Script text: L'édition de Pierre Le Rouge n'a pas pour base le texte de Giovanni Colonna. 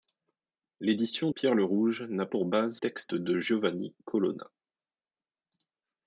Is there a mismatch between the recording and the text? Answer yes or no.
yes